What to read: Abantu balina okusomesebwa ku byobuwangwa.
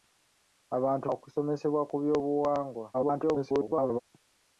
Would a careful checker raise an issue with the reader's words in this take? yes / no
yes